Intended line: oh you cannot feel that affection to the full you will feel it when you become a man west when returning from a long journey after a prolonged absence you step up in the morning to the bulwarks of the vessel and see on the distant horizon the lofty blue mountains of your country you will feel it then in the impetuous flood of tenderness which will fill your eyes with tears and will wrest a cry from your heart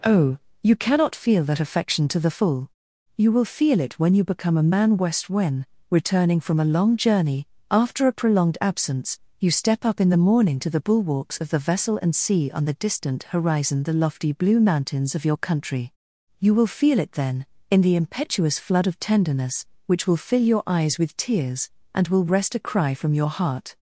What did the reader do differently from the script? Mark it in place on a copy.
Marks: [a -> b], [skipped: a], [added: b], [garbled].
oh you cannot feel that affection to the full you will feel it when you become a man west when returning from a long journey after a prolonged absence you step up in the morning to the bulwarks of the vessel and see on the distant horizon the lofty blue mountains of your country you will feel it then in the impetuous flood of tenderness which will fill your eyes with tears and will wrest a cry from your heart